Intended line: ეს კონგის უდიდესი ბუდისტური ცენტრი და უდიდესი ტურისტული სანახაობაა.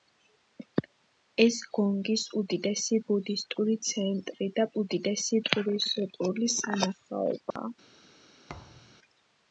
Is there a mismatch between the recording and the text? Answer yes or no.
no